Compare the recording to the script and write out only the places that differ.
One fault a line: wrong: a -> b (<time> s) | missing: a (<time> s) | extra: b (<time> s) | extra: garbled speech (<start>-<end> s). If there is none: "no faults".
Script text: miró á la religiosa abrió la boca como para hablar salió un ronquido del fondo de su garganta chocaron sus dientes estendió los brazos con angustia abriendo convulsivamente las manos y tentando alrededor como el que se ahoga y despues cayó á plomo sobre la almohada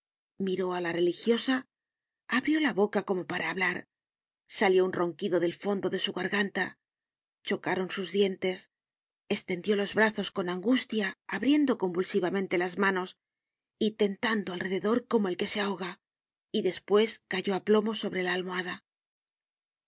no faults